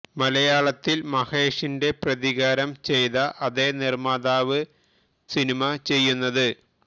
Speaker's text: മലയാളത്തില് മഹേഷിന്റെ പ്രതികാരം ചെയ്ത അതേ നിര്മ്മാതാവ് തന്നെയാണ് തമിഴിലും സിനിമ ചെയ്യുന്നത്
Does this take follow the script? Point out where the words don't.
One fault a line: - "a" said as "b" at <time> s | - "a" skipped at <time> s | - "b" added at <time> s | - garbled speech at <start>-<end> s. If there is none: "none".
- "തന്നെയാണ് തമിഴിലും" skipped at 4.6 s